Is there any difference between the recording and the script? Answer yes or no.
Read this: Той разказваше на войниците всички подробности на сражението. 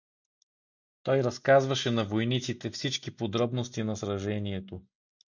no